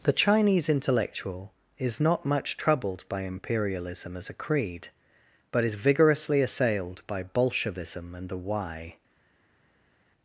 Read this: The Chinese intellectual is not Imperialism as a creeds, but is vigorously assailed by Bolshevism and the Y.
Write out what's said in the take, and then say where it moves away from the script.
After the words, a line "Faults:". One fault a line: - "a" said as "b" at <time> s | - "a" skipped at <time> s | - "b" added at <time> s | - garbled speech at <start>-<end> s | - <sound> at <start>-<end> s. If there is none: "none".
The Chinese intellectual is not much troubled by Imperialism as a creed, but is vigorously assailed by Bolshevism and the Y.
Faults:
- "much troubled by" added at 2.2 s
- "creeds" said as "creed" at 4.3 s